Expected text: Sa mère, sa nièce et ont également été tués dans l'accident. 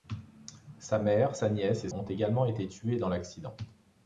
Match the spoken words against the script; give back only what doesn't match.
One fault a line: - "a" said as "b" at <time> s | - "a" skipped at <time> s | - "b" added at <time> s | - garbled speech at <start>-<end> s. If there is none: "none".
none